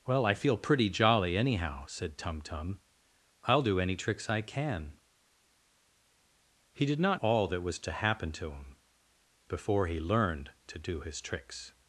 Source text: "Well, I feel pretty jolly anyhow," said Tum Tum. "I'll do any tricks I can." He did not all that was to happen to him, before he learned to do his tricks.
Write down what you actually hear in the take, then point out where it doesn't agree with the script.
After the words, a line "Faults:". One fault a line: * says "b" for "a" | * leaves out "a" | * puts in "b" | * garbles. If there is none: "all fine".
"Well, I feel pretty jolly anyhow," said Tum Tum. "I'll do any tricks I can." He did not all that was to happen to him, before he learned to do his tricks.
Faults:
all fine